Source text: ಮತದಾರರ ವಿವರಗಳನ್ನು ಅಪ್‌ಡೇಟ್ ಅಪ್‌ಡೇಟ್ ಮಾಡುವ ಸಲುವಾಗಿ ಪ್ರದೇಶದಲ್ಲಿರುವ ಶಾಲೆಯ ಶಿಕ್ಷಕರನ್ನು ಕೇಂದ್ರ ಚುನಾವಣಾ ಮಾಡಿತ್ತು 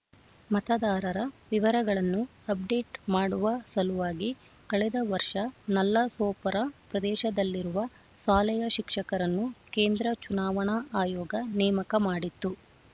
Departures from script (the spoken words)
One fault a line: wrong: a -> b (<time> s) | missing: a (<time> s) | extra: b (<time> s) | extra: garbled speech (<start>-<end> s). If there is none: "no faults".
missing: ಅಪ್‌ಡೇಟ್ (3.0 s)
extra: ಕಳೆದ ವರ್ಷ ನಲ್ಲಸೋಪರ (4.7 s)
extra: ಆಯೋಗ ನೇಮಕ (11.0 s)